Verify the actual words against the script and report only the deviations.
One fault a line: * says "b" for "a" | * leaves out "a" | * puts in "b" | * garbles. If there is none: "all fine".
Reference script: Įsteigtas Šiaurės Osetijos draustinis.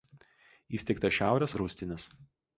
* leaves out "Osetijos"